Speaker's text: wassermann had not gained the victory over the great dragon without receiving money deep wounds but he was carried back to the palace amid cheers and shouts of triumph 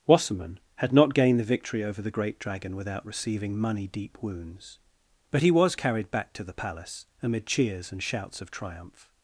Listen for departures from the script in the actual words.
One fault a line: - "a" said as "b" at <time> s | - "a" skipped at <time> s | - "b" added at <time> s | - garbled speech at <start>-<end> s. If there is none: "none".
none